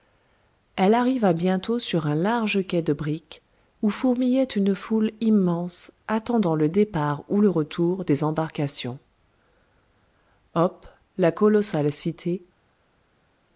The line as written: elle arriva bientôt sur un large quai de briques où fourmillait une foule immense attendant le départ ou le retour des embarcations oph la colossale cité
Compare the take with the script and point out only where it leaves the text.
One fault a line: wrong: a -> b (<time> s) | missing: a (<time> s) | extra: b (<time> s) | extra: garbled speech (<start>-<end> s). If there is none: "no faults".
no faults